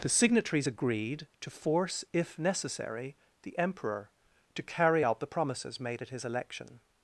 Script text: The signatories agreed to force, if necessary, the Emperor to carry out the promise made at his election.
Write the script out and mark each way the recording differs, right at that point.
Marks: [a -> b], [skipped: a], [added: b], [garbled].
The signatories agreed to force, if necessary, the Emperor to carry out the [promise -> promises] made at his election.